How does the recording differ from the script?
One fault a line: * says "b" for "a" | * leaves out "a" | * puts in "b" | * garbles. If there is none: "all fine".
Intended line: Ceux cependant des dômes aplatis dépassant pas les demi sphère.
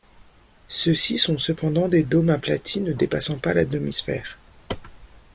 * puts in "ci sont"
* puts in "ne"
* says "la" for "les"